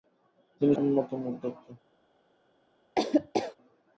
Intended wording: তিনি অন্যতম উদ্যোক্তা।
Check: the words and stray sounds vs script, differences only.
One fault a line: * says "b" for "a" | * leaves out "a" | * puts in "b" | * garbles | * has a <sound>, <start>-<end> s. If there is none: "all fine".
* has a laugh, 3.0-3.6 s